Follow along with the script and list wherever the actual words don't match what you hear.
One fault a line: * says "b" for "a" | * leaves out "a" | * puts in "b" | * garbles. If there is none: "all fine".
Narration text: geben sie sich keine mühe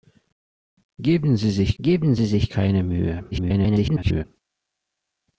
* puts in "geben sie sich"
* garbles